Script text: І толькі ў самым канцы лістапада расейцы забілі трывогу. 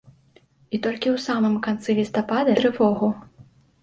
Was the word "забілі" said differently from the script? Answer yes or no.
yes